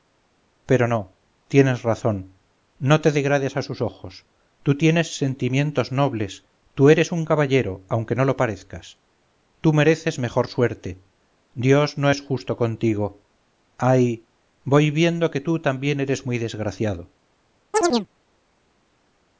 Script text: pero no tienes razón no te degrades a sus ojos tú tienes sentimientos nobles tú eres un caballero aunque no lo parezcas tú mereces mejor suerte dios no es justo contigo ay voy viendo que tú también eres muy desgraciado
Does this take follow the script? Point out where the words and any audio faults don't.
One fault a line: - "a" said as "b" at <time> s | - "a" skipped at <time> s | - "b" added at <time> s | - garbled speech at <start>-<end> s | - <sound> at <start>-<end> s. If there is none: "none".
- chirp at 17.7-18.1 s